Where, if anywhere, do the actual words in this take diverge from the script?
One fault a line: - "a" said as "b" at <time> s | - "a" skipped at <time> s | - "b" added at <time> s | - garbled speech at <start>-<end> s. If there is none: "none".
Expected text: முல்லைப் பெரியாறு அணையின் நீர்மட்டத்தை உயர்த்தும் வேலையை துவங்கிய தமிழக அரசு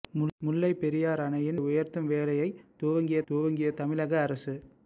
- "நீர்மட்டத்தை" skipped at 1.6 s
- "துவங்கிய" added at 3.2 s